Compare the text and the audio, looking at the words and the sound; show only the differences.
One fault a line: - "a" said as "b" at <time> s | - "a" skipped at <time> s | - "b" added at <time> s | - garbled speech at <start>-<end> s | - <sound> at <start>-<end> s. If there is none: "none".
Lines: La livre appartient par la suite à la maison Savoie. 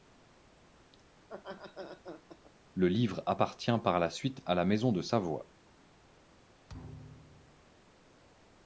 - laugh at 1.2-2.5 s
- "La" said as "Le" at 2.7 s
- "de" added at 4.9 s
- thud at 6.7-7.7 s